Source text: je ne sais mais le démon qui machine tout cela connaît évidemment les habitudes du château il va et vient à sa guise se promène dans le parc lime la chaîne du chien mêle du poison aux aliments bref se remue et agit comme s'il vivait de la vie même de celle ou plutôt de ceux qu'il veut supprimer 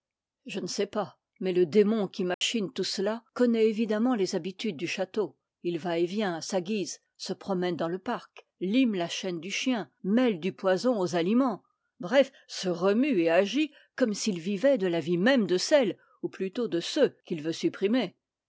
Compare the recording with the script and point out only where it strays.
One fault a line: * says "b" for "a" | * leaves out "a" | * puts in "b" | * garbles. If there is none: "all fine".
* puts in "pas"